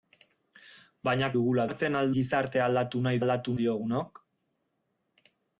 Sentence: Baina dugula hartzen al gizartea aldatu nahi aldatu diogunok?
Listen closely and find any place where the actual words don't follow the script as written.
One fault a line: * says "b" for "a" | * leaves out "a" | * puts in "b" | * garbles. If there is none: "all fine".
all fine